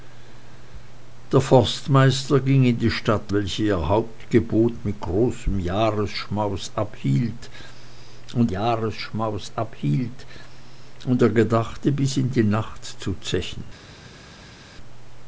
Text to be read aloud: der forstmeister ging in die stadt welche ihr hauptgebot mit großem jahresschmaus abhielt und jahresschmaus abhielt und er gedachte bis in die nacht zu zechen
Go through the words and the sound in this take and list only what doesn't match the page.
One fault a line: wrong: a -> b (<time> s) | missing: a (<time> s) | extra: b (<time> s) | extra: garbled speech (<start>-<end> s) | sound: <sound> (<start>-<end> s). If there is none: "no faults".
no faults